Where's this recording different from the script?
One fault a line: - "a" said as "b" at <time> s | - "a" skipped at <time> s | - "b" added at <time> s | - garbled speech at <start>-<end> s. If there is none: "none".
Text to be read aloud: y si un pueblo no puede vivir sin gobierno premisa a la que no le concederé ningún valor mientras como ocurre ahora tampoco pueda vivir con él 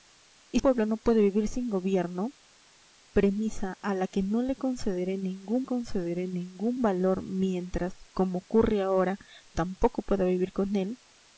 - "si un" skipped at 0.6 s
- "concederé ningún" added at 5.6 s